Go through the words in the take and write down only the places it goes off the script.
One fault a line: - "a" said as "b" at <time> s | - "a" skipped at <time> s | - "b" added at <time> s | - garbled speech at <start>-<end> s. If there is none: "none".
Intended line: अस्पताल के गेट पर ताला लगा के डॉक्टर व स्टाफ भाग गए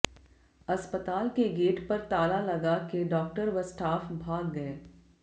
none